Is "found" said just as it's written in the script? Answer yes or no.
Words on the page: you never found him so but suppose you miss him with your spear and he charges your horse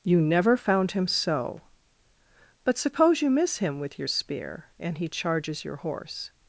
yes